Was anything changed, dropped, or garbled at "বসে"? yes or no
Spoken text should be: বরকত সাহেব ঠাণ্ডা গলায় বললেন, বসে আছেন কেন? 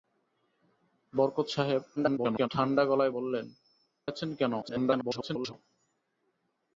yes